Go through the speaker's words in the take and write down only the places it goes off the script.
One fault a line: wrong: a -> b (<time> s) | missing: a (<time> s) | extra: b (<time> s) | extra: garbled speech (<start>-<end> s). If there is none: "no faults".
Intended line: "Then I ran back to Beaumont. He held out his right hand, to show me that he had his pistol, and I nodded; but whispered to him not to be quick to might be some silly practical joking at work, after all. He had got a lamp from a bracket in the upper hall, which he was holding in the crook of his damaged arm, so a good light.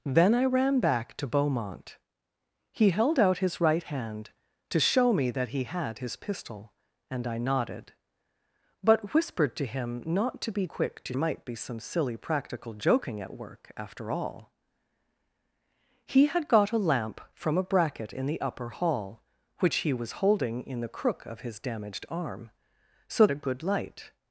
no faults